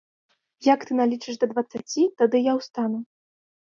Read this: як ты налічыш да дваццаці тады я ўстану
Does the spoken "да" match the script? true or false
true